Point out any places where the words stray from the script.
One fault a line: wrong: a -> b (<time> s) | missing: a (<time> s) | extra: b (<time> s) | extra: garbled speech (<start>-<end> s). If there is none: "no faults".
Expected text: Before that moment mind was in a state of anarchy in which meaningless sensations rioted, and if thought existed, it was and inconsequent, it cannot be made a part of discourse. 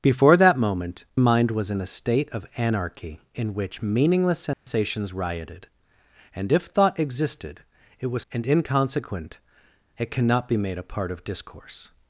no faults